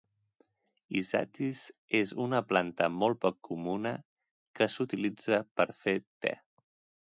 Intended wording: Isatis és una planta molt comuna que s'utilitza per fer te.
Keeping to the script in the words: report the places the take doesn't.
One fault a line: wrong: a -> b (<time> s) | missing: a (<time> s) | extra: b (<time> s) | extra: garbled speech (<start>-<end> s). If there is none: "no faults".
extra: poc (3.3 s)